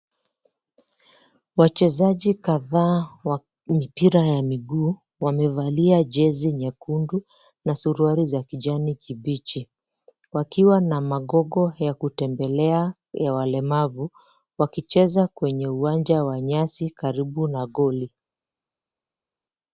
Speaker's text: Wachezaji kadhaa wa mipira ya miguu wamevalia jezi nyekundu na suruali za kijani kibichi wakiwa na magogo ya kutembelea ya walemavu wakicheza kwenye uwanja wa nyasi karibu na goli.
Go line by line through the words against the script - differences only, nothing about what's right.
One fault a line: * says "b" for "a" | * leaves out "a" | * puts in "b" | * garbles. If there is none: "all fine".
all fine